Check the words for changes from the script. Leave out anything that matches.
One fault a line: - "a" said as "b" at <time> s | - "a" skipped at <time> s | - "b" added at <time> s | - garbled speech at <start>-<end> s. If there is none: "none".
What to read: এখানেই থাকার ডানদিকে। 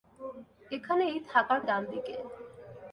none